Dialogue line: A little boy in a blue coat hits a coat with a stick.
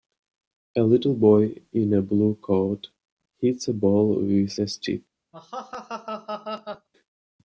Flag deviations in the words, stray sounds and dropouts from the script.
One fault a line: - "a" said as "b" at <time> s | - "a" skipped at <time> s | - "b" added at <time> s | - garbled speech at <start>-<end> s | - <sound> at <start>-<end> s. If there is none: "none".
- "coat" said as "ball" at 3.7 s
- laugh at 5.3-6.9 s